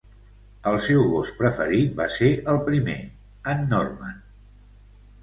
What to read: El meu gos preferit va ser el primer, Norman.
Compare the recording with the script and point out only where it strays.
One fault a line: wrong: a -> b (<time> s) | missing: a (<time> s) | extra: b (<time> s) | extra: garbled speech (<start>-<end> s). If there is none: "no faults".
wrong: meu -> seu (0.8 s)
extra: en (3.6 s)